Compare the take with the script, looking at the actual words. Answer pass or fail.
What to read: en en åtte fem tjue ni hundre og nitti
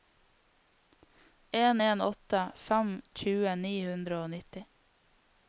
pass